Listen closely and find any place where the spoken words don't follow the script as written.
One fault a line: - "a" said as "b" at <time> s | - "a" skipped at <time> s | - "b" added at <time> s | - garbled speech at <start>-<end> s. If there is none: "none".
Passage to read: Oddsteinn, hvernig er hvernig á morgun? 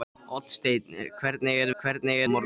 none